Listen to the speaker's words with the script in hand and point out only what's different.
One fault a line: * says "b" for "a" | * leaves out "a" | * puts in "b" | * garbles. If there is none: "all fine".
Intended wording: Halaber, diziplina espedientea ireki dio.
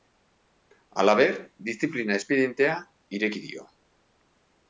all fine